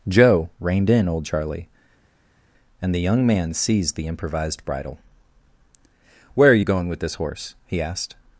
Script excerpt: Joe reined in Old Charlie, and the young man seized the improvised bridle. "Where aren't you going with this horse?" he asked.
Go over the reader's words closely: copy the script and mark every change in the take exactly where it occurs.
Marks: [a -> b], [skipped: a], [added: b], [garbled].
Joe reined in Old Charlie, and the young man seized the improvised bridle. "Where [aren't -> are] you going with this horse?" he asked.